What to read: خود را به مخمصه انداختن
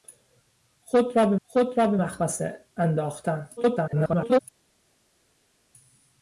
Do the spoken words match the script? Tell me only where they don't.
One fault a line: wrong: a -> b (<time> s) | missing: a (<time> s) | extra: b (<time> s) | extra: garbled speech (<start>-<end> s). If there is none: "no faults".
extra: خود را به (1.4 s)
extra: garbled speech (3.6-4.4 s)